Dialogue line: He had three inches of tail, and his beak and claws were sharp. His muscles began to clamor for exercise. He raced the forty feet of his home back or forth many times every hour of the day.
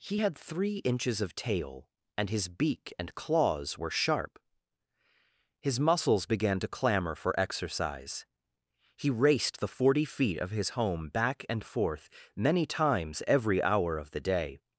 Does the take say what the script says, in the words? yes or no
no